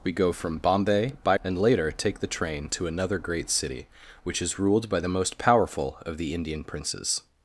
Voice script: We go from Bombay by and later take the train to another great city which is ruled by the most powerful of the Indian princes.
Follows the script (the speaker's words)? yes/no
yes